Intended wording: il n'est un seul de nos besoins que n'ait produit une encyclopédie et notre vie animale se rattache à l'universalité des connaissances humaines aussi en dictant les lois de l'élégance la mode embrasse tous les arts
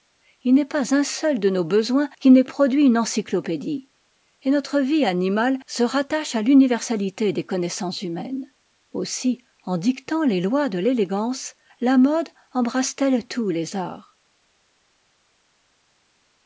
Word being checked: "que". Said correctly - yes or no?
no